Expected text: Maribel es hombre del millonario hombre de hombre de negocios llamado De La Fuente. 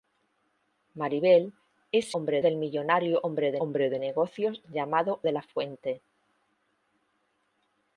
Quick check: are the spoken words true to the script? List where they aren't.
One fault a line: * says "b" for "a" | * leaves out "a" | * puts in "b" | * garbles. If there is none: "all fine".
all fine